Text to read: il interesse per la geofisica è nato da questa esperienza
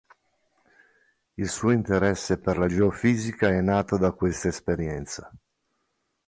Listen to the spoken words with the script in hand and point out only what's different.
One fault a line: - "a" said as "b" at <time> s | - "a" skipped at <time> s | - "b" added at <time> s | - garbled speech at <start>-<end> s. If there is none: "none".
- "suo" added at 1.5 s